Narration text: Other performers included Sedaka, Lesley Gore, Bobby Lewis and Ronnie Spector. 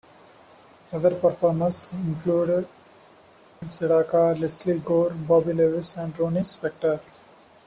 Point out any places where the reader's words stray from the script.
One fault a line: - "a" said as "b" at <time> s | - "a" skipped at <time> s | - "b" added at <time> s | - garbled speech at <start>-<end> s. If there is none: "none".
none